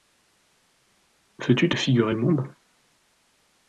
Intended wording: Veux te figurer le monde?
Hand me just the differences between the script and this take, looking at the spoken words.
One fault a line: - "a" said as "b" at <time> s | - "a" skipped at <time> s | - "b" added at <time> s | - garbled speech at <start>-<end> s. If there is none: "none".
- "tu" added at 1.5 s